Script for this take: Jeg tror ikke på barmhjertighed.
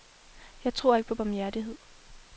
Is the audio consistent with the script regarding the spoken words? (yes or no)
yes